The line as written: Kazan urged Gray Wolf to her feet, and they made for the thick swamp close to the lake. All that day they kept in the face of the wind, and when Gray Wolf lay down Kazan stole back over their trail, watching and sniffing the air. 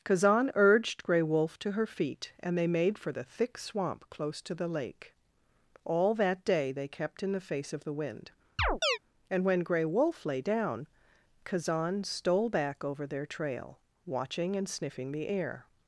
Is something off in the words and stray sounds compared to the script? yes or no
yes